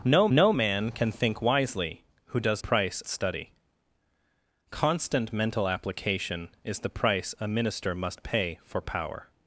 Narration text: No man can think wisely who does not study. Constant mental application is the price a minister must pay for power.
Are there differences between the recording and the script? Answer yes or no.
yes